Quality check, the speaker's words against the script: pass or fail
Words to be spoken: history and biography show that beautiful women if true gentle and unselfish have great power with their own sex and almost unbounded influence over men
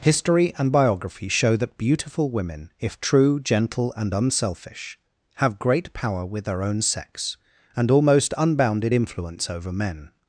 pass